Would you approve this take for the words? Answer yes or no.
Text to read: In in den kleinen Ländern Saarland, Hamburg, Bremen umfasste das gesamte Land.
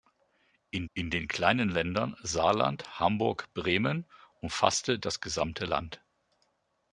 yes